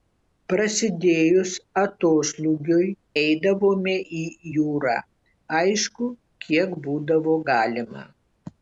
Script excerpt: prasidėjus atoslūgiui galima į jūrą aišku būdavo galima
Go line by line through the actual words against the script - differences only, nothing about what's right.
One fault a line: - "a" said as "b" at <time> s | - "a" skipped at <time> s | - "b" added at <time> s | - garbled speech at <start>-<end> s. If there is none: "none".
- "galima" said as "eidavome" at 3.2 s
- "kiek" added at 6.5 s